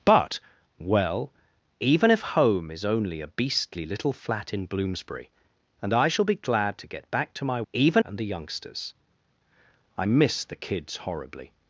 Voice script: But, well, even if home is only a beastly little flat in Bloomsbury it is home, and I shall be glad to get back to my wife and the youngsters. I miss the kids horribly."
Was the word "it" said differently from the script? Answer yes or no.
yes